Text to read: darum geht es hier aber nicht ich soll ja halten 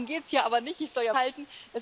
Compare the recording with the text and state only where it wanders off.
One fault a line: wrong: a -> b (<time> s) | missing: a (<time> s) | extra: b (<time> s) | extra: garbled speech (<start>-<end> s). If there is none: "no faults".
no faults